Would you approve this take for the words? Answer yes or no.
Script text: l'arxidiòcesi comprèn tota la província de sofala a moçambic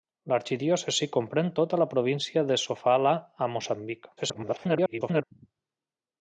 no